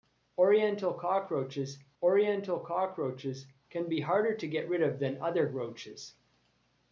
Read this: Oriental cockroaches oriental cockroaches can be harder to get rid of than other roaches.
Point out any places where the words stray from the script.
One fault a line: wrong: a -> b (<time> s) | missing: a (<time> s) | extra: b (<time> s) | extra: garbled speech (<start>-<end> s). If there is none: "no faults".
no faults